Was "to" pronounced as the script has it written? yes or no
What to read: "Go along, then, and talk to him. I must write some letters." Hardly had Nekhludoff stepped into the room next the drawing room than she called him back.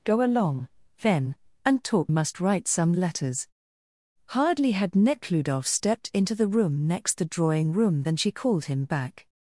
no